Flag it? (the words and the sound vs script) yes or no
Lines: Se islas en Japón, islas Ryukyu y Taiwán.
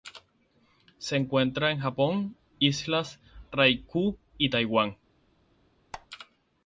yes